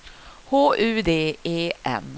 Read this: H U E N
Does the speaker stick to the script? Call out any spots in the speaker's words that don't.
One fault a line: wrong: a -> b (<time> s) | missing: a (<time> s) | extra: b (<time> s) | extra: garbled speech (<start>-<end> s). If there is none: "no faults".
extra: D (1.0 s)